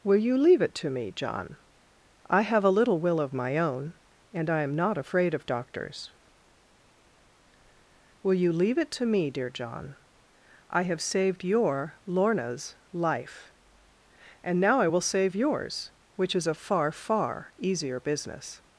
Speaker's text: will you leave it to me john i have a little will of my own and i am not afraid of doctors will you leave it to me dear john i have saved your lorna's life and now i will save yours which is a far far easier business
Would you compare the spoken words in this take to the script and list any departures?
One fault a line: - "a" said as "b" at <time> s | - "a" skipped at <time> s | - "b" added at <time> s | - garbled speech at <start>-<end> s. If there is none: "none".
none